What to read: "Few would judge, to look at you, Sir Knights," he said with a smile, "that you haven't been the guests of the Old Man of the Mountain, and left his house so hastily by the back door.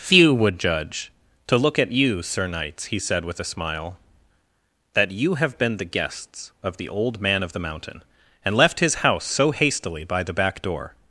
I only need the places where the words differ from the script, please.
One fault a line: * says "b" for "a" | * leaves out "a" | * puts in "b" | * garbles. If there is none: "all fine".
* says "have" for "haven't"